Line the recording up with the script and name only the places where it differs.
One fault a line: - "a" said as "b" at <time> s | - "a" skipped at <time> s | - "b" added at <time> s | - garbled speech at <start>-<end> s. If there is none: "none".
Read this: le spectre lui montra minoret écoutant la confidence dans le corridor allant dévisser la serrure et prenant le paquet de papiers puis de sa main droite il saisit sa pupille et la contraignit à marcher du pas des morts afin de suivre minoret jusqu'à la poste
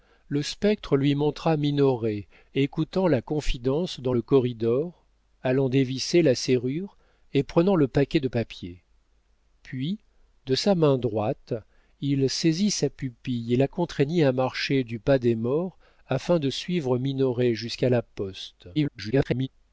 - garbled speech at 18.7-19.5 s